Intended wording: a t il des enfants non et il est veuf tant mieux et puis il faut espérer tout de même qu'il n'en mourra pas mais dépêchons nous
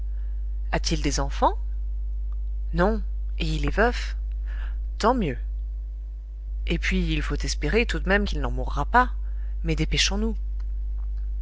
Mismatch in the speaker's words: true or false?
false